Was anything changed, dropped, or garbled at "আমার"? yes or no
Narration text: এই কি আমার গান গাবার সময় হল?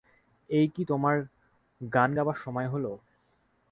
yes